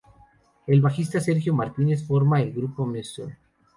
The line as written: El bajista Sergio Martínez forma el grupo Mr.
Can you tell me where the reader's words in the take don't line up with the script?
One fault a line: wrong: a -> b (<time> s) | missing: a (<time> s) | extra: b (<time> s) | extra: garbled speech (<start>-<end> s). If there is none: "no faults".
no faults